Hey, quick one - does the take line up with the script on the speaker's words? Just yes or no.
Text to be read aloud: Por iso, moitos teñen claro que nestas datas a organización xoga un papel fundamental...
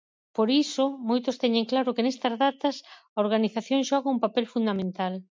yes